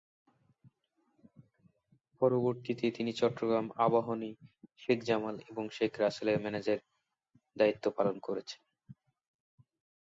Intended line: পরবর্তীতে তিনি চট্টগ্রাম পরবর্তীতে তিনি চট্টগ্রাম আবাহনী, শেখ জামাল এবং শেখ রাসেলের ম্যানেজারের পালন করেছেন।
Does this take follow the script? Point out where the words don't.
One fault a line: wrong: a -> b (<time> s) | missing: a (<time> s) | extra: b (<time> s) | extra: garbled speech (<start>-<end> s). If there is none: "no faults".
missing: পরবর্তীতে তিনি চট্টগ্রাম (3.7 s)
extra: দায়িত্ব (7.6 s)